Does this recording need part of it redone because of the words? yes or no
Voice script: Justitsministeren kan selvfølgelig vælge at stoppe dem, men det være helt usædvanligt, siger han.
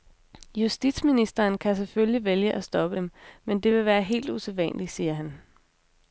yes